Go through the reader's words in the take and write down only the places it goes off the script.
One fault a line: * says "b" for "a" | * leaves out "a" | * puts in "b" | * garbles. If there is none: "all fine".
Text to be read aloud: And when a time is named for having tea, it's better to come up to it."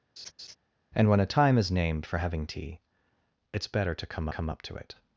* puts in "come"